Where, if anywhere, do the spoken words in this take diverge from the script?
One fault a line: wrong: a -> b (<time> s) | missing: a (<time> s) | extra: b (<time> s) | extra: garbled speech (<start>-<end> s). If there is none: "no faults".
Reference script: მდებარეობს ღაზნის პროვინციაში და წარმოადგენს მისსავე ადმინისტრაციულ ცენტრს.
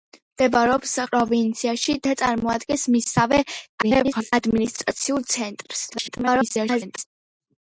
missing: ღაზნის (0.9 s)
extra: garbled speech (3.8-4.3 s)
extra: garbled speech (5.9-7.0 s)